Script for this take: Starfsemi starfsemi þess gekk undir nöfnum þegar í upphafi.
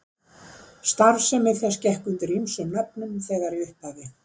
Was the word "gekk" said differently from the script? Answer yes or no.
no